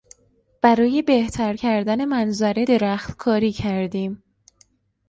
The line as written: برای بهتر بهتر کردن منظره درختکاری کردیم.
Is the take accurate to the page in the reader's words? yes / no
no